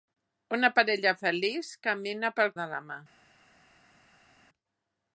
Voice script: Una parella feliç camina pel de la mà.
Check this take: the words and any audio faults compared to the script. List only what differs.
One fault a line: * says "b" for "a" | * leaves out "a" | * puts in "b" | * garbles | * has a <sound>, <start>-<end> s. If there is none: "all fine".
all fine